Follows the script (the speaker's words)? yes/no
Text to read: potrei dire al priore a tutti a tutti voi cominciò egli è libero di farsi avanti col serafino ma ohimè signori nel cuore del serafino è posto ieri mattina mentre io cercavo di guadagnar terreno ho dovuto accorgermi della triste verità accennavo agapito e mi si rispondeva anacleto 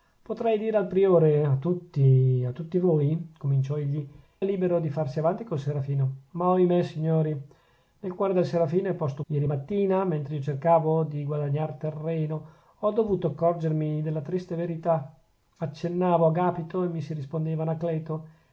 yes